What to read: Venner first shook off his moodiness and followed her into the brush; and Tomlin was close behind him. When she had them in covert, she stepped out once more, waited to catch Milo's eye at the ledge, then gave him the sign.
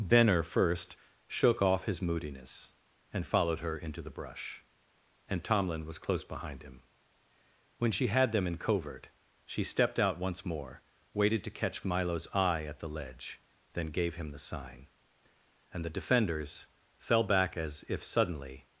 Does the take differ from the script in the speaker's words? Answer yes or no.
yes